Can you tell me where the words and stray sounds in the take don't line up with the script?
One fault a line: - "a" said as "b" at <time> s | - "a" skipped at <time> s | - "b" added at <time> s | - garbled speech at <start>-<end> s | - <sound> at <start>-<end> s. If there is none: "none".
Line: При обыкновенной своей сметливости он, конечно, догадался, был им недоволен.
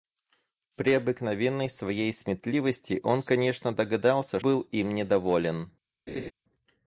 - laugh at 6.1-6.3 s